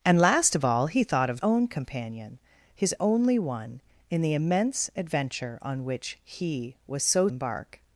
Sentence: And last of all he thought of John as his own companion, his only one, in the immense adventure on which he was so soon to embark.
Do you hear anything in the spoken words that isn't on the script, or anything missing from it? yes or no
yes